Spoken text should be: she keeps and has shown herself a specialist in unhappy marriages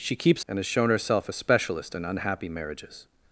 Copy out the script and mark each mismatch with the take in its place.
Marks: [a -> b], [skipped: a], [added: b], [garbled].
she keeps and has shown herself a specialist in unhappy marriages